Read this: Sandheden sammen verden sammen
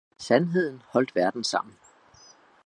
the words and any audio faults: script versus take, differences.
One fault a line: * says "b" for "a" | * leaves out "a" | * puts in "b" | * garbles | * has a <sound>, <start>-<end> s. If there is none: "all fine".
* says "holdt" for "sammen"